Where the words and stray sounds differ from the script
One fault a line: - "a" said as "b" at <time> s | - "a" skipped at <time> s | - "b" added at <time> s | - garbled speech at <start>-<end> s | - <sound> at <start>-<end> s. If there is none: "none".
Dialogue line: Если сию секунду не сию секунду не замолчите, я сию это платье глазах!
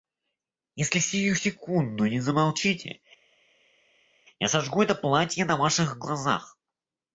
- "сию секунду не" skipped at 2.2 s
- "сию" said as "сожгу" at 4.5 s
- "на Ваших" added at 5.4 s